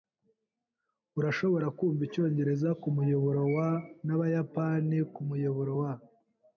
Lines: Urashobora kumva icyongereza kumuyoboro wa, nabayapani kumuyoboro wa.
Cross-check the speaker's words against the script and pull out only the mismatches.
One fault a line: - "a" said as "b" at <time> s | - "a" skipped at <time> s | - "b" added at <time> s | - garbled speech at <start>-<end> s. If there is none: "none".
none